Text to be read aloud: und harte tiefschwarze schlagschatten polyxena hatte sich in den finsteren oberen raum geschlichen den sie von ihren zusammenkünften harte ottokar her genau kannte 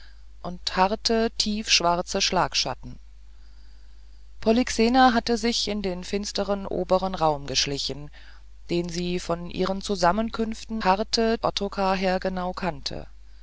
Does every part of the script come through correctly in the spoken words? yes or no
yes